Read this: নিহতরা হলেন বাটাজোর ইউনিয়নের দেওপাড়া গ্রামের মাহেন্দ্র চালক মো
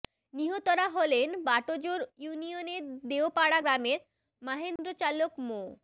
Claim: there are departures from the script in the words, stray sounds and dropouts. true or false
true